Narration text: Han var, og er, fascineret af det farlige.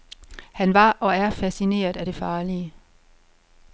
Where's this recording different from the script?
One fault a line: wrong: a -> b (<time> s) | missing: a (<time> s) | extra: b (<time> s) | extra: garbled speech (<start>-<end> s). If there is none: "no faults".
no faults